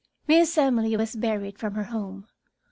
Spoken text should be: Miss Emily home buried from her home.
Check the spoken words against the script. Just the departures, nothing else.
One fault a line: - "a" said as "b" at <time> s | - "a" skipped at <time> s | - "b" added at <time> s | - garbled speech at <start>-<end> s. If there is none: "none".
- "home" said as "was" at 0.9 s